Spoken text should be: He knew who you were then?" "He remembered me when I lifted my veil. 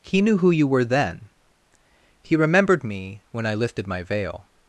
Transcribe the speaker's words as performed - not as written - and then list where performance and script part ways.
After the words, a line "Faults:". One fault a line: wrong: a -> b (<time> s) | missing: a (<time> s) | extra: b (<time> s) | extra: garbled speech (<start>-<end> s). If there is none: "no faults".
He knew who you were then?" "He remembered me when I lifted my veil.
Faults:
no faults